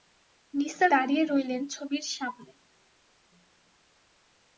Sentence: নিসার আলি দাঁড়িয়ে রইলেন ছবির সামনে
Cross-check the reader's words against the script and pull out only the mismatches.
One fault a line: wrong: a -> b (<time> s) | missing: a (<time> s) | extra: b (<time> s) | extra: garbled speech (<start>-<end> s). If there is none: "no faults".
missing: আলি (0.9 s)